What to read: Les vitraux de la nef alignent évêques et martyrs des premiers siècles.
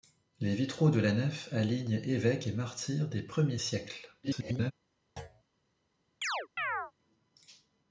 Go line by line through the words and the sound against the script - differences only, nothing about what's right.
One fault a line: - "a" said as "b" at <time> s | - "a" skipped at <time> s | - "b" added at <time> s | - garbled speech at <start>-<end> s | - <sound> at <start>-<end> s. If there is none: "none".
- garbled speech at 4.2-4.7 s
- thud at 5.2-5.4 s
- chirp at 6.2-6.9 s